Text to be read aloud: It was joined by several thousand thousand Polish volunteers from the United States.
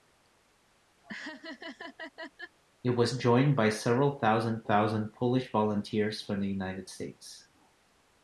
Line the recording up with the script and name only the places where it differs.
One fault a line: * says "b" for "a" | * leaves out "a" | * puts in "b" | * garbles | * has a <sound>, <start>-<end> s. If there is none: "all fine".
* has a laugh, 1.0-2.6 s